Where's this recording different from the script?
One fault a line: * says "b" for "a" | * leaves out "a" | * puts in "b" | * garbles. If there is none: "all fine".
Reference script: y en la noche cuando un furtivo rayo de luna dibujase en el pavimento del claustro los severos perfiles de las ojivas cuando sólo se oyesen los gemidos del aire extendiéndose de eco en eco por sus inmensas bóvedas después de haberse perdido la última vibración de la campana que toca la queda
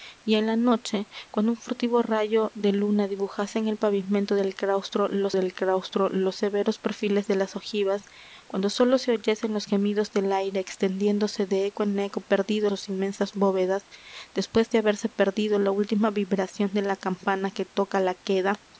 * puts in "del claustro los"
* says "perdido" for "por"